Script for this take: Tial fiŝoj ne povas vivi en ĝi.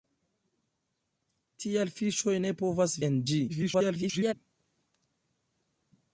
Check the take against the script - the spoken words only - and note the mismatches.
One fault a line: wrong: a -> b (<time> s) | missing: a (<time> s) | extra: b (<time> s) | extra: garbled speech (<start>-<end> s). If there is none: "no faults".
missing: vivi (3.0 s)
extra: garbled speech (3.5-4.3 s)